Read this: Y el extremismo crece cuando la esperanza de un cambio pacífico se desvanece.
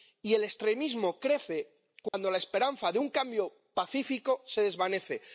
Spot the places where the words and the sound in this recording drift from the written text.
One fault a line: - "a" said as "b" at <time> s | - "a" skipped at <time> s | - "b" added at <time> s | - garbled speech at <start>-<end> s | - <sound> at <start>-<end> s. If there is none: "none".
- dropout at 2.1-2.1 s